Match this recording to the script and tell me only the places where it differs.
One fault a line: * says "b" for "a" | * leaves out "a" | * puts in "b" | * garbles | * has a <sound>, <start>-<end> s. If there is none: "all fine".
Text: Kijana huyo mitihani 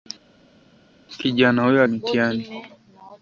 all fine